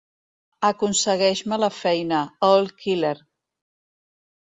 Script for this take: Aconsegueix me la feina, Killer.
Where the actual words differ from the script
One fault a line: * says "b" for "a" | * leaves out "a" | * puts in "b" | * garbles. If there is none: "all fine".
* puts in "All"